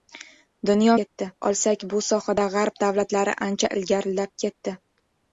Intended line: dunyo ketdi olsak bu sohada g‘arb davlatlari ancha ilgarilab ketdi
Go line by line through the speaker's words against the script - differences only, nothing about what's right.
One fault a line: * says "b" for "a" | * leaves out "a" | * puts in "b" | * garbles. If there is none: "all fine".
all fine